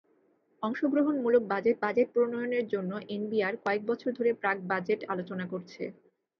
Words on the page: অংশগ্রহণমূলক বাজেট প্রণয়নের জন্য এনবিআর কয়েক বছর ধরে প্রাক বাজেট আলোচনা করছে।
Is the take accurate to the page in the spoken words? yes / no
no